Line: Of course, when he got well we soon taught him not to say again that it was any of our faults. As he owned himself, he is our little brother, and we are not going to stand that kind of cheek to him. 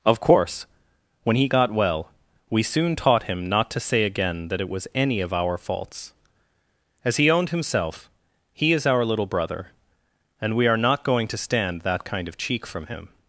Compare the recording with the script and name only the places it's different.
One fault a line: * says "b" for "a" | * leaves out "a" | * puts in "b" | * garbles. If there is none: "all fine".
* says "from" for "to"